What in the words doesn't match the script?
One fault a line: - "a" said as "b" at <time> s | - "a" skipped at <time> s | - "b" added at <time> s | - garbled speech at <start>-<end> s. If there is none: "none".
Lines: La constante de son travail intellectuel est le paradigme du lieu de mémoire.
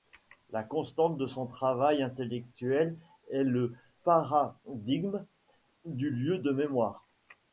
none